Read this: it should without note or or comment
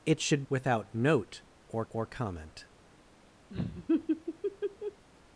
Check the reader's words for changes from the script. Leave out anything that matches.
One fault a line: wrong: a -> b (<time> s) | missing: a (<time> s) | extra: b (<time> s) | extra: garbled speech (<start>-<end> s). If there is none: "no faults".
no faults